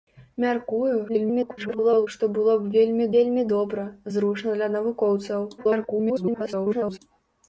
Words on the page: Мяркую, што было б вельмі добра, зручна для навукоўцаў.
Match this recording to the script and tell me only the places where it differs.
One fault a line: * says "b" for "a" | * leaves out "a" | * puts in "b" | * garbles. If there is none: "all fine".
* garbles
* puts in "вельмі"
* garbles